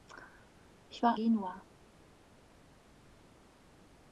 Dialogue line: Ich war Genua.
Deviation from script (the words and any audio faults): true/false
false